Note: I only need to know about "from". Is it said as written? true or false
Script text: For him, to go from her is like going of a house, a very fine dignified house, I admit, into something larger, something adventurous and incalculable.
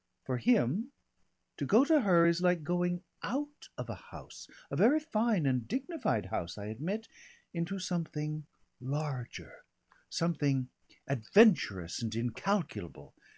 false